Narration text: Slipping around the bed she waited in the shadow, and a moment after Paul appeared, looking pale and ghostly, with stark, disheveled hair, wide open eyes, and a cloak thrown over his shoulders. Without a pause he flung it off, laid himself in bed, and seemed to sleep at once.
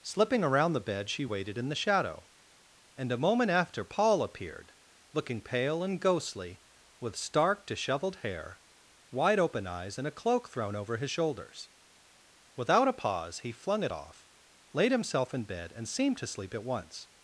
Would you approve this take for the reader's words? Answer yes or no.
yes